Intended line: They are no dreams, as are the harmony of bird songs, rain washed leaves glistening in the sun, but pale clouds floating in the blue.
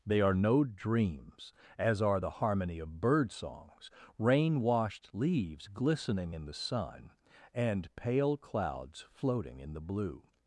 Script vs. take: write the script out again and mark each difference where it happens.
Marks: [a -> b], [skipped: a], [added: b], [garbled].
They are no dreams, as are the harmony of bird songs, rain washed leaves glistening in the sun, [but -> and] pale clouds floating in the blue.